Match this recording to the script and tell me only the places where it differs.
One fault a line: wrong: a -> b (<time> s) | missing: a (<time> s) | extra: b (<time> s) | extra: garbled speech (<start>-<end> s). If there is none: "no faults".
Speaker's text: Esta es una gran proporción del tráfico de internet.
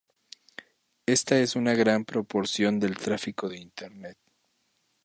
no faults